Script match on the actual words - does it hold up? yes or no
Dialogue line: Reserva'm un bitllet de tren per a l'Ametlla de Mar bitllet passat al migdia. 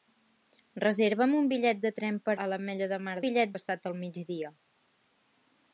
yes